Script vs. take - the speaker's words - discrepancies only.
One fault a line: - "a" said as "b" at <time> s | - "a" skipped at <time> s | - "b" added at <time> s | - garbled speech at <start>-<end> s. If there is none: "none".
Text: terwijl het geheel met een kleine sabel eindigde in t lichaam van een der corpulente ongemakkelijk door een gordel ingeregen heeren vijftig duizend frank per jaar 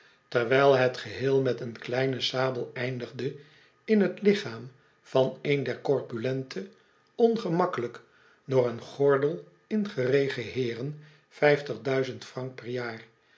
none